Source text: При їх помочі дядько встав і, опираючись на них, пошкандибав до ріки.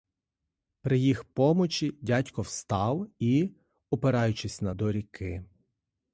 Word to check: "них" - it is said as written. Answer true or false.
false